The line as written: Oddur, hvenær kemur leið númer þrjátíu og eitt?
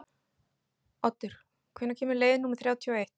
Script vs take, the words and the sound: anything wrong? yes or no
no